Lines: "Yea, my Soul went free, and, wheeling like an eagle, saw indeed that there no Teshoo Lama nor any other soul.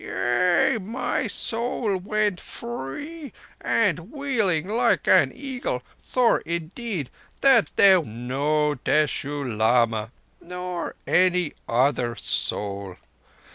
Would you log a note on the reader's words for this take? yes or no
no